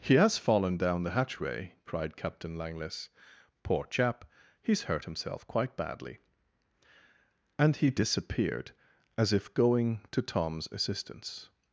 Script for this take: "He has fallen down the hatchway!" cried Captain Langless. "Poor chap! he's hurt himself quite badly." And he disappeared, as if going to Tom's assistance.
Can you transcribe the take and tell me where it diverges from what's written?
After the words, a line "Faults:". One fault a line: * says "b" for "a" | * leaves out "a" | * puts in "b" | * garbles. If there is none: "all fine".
"He has fallen down the hatchway!" cried Captain Langless. "Poor chap! he's hurt himself quite badly." And he disappeared, as if going to Tom's assistance.
Faults:
all fine